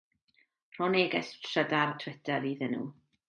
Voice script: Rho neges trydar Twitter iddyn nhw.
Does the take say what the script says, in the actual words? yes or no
yes